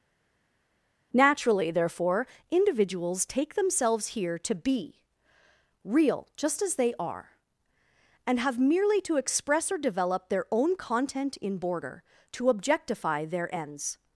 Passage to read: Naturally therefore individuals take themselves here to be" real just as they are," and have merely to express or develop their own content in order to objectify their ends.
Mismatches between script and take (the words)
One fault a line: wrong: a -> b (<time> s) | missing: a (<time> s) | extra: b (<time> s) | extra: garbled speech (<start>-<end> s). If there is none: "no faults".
wrong: order -> border (11.6 s)